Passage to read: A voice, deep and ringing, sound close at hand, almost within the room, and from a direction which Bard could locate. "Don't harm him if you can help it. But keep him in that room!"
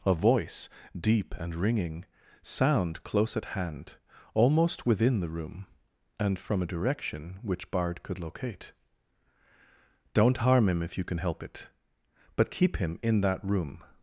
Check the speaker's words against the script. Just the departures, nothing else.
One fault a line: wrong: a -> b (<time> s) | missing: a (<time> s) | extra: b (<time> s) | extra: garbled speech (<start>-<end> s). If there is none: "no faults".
no faults